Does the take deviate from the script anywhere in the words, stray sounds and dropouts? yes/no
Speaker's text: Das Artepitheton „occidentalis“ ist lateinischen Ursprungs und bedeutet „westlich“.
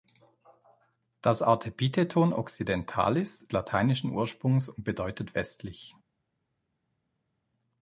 yes